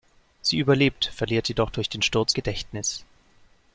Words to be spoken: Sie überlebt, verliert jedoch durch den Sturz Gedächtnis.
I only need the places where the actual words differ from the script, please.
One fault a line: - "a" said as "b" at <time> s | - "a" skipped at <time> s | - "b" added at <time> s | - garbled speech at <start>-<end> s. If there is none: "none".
none